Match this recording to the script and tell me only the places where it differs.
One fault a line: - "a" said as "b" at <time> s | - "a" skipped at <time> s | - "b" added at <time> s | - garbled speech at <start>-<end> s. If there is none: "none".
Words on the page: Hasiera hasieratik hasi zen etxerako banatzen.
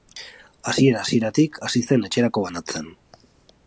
none